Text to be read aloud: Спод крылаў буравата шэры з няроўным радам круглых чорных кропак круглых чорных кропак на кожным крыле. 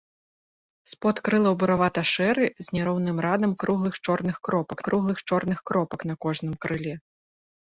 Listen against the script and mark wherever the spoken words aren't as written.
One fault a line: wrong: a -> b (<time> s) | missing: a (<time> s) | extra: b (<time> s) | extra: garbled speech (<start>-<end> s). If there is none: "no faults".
no faults